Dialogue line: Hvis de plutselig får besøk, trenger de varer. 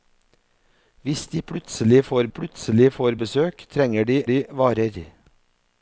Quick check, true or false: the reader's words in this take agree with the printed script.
false